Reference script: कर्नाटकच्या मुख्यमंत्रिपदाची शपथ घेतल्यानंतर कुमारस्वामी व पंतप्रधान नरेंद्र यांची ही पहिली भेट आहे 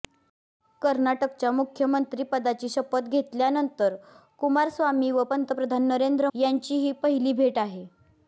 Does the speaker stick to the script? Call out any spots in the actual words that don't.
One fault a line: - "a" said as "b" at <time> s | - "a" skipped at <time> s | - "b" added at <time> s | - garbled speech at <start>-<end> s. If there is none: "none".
none